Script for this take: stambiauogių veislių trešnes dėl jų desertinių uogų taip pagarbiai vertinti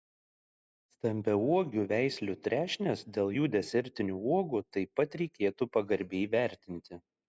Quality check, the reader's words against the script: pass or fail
fail